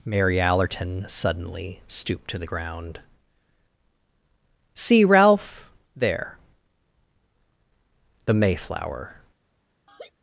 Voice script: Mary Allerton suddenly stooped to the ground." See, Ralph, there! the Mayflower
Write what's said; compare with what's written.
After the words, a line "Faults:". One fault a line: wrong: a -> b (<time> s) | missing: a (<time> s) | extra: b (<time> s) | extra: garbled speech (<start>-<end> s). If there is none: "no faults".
Mary Allerton suddenly stooped to the ground." See, Ralph, there! the Mayflower
Faults:
no faults